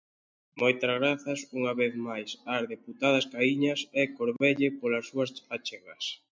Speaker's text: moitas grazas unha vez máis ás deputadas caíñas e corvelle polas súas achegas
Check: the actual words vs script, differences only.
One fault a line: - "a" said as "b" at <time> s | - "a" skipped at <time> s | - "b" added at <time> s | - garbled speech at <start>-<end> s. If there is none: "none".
none